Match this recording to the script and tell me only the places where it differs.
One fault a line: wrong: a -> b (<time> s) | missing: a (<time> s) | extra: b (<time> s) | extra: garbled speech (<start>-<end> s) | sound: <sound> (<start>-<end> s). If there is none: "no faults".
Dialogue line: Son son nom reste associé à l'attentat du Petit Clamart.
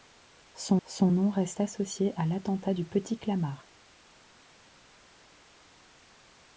no faults